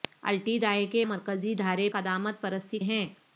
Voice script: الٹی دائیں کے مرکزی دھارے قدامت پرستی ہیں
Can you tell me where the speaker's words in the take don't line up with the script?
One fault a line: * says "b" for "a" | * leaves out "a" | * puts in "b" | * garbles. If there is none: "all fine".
all fine